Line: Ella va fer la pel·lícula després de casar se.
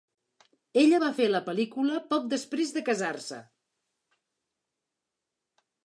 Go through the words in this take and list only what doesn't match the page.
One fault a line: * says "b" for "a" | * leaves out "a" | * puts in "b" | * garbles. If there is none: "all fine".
* puts in "poc"